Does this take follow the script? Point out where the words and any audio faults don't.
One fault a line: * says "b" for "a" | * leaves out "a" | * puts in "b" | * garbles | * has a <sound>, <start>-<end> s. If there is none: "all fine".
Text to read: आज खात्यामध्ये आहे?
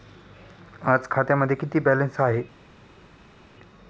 * puts in "किती बॅलन्स"